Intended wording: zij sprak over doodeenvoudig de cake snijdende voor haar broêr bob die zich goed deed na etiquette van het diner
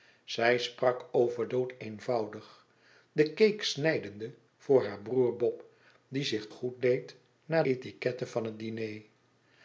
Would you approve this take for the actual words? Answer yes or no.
yes